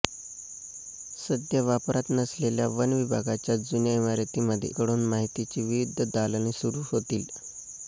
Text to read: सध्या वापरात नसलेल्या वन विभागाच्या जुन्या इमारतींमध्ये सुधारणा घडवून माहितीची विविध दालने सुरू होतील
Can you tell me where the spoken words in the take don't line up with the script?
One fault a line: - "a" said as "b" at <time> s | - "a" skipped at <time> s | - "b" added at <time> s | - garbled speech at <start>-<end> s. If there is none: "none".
- "सुधारणा" skipped at 4.7 s